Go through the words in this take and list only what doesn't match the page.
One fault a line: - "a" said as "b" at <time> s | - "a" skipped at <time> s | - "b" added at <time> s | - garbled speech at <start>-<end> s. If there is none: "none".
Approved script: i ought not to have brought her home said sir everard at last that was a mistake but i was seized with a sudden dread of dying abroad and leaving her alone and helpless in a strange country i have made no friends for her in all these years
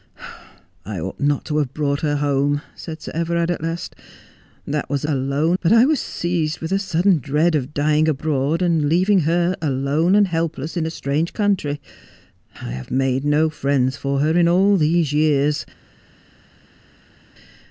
- "mistake" said as "alone" at 5.0 s